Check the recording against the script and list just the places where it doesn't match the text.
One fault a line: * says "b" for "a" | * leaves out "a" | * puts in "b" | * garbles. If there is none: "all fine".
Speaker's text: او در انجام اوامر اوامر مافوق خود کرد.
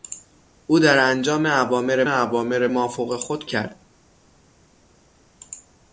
all fine